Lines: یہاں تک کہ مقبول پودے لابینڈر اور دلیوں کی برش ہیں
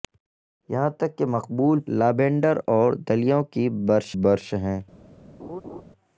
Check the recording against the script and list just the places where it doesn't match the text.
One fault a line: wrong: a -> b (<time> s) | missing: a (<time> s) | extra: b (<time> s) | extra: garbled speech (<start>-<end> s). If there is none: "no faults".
missing: پودے (1.8 s)
extra: برش (4.2 s)